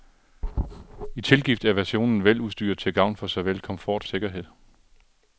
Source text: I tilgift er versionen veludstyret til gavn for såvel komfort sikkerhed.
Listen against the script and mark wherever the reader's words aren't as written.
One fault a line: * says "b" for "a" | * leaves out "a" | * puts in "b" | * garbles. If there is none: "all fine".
all fine